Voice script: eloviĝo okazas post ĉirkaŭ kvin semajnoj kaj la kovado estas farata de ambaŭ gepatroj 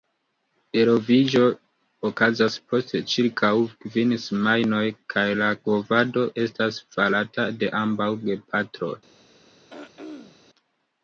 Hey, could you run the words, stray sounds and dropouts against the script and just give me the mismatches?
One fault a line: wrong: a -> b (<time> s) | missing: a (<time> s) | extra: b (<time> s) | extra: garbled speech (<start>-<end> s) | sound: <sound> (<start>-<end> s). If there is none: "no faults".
sound: throat clearing (9.7-10.4 s)